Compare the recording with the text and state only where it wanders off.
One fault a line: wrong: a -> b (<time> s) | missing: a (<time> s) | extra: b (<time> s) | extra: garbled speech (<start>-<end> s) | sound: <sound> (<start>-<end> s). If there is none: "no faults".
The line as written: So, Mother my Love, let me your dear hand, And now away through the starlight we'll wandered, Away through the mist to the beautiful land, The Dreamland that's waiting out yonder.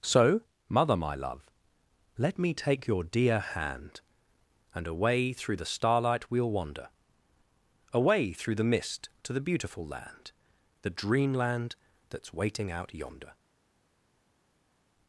extra: take (2.5 s)
missing: now (4.9 s)
wrong: wandered -> wander (6.5 s)